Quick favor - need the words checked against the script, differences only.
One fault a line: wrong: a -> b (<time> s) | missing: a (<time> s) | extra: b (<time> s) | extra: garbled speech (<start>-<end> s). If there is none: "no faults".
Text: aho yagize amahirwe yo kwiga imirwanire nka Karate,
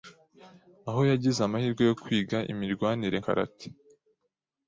missing: nka (3.2 s)